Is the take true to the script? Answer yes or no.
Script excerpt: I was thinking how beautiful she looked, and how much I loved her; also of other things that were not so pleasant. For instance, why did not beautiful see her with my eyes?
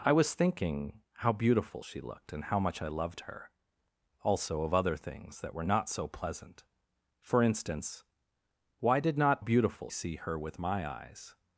yes